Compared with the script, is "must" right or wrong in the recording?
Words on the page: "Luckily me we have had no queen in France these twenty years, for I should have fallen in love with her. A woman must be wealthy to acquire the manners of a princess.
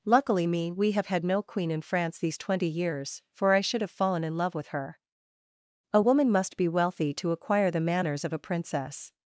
right